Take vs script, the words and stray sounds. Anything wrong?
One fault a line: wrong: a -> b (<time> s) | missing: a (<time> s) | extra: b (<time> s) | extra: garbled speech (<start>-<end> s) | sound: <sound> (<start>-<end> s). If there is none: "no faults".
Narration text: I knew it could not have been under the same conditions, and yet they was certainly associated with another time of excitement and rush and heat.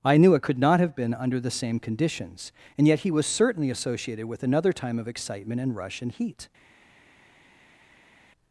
wrong: they -> he (3.0 s)